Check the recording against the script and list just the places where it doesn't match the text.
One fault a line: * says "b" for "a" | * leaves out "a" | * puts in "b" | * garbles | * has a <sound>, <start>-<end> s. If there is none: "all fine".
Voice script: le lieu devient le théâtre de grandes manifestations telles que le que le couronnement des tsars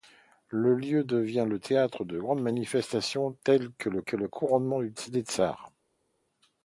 all fine